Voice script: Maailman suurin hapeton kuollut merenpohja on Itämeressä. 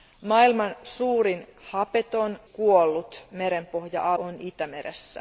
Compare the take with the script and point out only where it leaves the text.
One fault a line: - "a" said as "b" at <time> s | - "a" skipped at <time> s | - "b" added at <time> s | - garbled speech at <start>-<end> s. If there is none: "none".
none